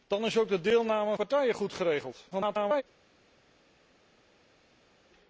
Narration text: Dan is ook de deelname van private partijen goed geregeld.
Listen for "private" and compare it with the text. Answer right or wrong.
wrong